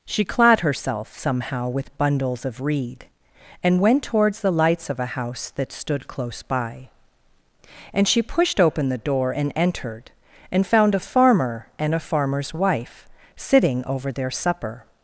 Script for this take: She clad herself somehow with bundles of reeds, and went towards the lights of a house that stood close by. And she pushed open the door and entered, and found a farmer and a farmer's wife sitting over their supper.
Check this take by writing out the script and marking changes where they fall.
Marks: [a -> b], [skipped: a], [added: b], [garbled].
She clad herself somehow with bundles of [reeds, -> reed] and went towards the lights of a house that stood close by. And she pushed open the door and entered, and found a farmer and a farmer's wife sitting over their supper.